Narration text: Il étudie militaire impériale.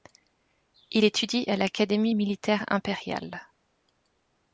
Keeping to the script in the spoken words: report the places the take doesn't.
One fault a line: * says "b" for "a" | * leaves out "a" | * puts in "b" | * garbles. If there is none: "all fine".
* puts in "à l'Académie"